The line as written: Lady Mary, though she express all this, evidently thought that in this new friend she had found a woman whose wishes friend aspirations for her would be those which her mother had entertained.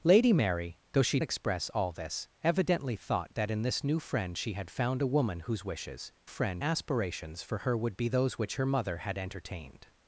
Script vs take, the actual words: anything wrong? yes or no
no